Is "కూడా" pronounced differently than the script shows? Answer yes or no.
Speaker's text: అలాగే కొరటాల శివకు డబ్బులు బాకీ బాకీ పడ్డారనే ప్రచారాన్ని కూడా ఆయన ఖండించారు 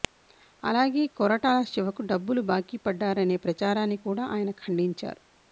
no